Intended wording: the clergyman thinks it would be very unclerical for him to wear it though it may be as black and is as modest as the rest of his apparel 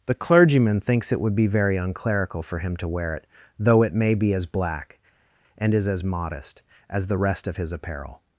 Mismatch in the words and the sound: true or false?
false